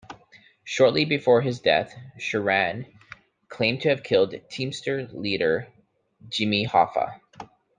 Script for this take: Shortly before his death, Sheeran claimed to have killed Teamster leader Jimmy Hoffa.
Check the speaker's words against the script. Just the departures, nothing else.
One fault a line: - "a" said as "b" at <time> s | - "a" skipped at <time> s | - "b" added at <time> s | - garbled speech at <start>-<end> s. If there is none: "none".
none